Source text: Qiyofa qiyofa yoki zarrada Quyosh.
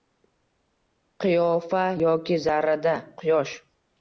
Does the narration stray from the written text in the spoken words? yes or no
yes